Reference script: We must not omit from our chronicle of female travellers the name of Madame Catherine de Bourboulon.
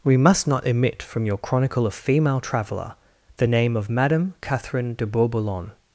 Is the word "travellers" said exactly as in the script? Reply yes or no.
no